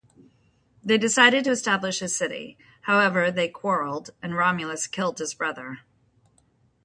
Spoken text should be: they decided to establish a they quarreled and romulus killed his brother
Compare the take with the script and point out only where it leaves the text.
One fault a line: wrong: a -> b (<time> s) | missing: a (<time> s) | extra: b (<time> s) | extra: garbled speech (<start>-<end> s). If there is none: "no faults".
extra: city however (2.1 s)